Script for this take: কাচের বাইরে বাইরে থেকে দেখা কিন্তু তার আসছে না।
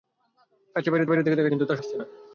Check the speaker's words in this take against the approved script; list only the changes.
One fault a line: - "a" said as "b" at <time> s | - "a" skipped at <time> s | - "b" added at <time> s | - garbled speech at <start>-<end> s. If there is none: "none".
none